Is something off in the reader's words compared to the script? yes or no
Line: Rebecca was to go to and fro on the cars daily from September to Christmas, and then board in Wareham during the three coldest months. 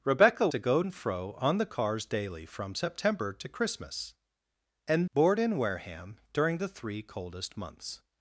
yes